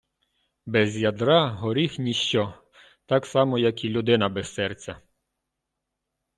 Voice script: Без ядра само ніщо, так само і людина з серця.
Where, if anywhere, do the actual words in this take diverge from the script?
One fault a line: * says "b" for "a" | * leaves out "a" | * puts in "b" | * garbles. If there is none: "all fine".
* says "горіх" for "само"
* puts in "як"
* says "без" for "з"